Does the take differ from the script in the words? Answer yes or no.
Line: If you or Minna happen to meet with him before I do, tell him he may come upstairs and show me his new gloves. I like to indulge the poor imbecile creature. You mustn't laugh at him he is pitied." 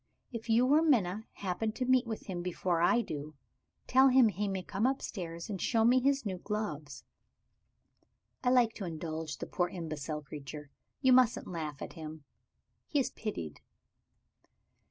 no